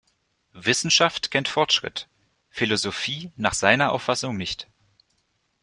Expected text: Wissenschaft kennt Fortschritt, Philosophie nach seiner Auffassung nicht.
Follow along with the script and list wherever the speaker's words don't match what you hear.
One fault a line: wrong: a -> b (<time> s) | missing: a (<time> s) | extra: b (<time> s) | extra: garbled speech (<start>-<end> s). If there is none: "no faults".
no faults